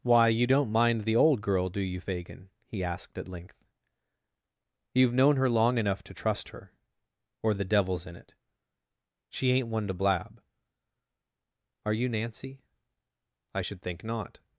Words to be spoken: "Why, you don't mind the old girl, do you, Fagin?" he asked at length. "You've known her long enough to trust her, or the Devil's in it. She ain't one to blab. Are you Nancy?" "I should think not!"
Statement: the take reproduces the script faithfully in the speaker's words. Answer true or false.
true